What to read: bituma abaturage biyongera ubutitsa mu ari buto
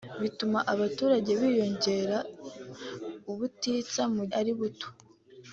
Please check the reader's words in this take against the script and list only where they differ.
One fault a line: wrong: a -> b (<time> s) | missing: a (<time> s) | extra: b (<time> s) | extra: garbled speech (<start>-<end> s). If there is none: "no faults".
no faults